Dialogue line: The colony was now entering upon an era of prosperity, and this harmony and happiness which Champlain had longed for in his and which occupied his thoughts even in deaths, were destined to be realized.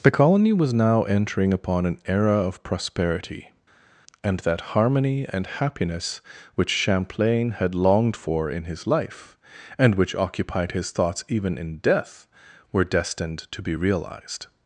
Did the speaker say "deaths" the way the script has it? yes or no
no